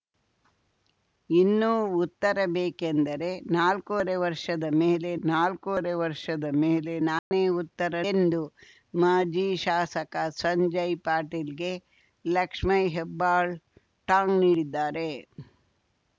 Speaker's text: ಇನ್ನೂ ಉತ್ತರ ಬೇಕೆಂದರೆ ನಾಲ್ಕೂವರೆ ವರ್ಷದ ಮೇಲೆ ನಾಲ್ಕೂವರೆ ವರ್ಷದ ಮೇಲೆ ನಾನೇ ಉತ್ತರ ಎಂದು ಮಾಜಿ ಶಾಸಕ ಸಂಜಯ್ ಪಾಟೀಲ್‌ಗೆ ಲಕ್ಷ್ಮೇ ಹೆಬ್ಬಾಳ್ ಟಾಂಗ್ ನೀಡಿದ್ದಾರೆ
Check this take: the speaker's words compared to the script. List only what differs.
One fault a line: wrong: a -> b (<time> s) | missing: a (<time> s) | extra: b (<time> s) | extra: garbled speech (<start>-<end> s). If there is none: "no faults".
no faults